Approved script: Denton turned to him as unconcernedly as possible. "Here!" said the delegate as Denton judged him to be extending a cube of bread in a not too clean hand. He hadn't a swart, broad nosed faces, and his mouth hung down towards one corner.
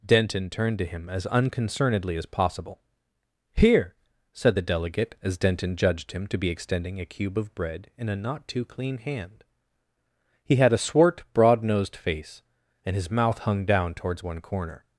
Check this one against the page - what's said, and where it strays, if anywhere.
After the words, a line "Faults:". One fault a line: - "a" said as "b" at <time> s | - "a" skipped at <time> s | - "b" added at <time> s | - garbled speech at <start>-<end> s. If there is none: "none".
Denton turned to him as unconcernedly as possible. "Here!" said the delegate as Denton judged him to be extending a cube of bread in a not too clean hand. He had a swart, broad nosed face, and his mouth hung down towards one corner.
Faults:
- "hadn't" said as "had" at 10.6 s
- "faces" said as "face" at 12.0 s